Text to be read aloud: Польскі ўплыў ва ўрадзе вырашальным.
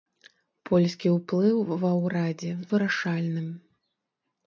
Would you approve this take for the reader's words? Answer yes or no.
yes